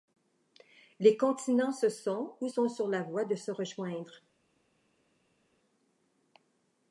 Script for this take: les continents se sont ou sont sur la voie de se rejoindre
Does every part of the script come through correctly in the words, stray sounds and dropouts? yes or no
yes